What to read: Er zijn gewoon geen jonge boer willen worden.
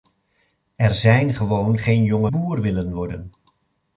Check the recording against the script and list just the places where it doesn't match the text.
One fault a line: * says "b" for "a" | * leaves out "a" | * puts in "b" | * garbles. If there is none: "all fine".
all fine